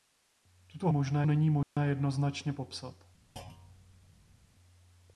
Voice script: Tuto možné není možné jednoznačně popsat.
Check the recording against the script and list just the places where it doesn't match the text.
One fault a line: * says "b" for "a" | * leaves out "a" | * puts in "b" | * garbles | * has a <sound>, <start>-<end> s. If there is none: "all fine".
* has a dropout, 1.6-1.8 s
* has a thud, 3.4-4.5 s